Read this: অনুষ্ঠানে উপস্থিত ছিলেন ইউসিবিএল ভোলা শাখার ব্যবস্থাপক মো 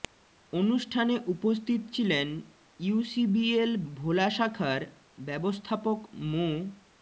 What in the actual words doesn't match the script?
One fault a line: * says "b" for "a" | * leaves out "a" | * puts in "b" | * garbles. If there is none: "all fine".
all fine